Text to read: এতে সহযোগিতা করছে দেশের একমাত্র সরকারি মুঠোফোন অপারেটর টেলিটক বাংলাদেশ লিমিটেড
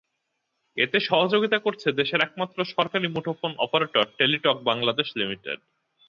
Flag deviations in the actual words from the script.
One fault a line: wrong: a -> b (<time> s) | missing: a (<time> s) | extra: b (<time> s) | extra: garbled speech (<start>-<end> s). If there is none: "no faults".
no faults